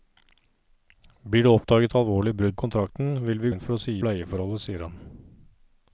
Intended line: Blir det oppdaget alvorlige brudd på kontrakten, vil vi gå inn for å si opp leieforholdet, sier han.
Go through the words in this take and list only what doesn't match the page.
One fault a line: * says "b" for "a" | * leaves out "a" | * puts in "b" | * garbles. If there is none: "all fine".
* leaves out "på"
* leaves out "gå"
* leaves out "opp"